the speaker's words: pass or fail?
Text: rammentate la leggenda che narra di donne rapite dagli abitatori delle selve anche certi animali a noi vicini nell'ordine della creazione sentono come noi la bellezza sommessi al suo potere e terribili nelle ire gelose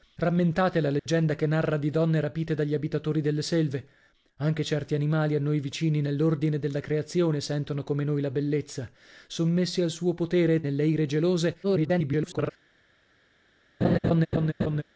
fail